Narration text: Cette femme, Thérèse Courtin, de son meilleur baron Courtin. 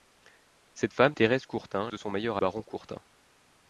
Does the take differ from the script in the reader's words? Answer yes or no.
no